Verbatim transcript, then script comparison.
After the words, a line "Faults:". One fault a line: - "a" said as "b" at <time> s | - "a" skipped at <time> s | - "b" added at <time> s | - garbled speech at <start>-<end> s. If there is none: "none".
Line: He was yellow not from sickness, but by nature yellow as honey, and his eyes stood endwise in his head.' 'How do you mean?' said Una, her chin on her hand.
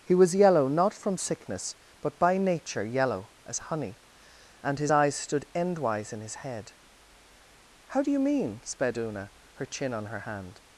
He was yellow not from sickness, but by nature yellow as honey, and his eyes stood endwise in his head.' 'How do you mean?' sped Una, her chin on her hand.
Faults:
- "said" said as "sped" at 8.6 s